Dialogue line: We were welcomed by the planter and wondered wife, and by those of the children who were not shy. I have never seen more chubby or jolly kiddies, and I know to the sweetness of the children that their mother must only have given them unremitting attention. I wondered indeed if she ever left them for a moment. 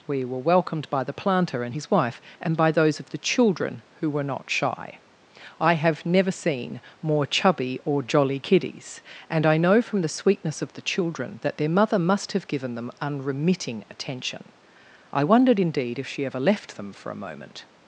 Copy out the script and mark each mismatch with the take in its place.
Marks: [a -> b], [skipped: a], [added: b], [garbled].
We were welcomed by the planter and [wondered -> his] wife, and by those of the children who were not shy. I have never seen more chubby or jolly kiddies, and I know [to -> from] the sweetness of the children that their mother must [skipped: only] have given them unremitting attention. I wondered indeed if she ever left them for a moment.